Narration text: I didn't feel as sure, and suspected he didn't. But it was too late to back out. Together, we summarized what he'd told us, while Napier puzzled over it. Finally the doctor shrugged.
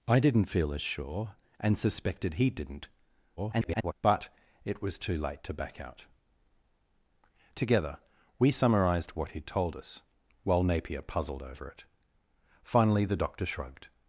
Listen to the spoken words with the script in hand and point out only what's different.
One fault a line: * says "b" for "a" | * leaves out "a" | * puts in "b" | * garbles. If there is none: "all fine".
* garbles